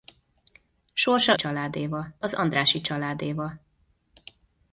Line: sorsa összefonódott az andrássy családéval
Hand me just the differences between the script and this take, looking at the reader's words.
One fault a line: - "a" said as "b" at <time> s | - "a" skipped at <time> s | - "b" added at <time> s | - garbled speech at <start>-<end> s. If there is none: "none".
- "összefonódott" said as "családéval" at 1.3 s